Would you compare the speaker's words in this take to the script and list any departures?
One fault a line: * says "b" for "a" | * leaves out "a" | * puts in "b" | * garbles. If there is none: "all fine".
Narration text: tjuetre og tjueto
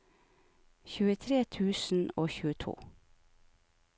* puts in "tusen"